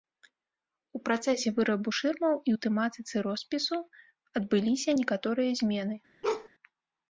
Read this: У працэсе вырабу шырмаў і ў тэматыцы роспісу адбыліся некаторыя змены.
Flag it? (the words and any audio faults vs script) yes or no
yes